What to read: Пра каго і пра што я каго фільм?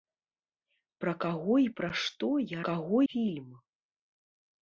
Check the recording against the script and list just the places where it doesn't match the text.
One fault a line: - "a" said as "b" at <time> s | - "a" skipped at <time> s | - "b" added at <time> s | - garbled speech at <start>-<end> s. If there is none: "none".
none